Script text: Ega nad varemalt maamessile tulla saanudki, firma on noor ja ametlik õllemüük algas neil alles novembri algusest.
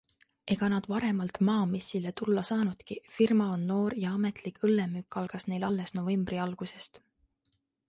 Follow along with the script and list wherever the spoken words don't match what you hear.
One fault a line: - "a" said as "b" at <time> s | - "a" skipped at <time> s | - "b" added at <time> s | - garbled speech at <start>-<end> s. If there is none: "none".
none